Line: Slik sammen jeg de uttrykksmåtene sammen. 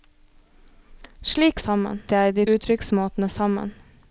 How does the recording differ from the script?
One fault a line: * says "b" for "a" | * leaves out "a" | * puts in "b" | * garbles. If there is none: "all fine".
all fine